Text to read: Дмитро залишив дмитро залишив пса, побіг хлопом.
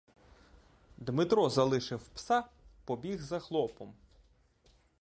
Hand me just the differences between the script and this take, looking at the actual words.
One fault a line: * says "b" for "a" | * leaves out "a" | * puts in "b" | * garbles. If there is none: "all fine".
* leaves out "дмитро залишив"
* puts in "за"